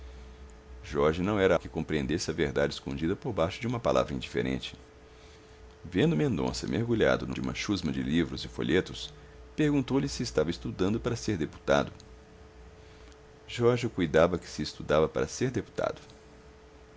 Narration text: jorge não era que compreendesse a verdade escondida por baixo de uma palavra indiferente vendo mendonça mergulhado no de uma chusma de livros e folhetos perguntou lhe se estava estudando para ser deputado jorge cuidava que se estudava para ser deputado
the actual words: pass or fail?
pass